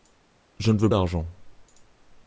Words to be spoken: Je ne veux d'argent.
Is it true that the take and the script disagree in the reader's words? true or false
false